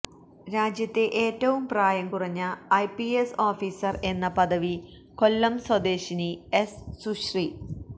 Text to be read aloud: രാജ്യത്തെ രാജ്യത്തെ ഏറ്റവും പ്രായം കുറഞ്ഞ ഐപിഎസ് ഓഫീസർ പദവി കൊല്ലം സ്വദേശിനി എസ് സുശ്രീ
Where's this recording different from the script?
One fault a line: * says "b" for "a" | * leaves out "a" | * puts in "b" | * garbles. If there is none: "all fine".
* leaves out "രാജ്യത്തെ"
* puts in "എന്ന"